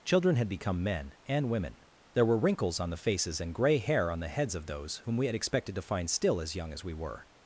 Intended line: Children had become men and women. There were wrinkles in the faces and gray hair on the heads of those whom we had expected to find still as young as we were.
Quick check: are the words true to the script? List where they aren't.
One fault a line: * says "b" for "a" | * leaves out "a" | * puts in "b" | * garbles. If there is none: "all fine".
* says "on" for "in"